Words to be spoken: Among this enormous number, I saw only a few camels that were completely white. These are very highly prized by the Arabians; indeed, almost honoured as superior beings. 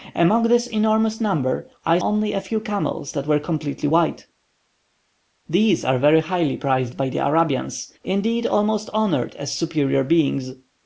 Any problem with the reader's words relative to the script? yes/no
yes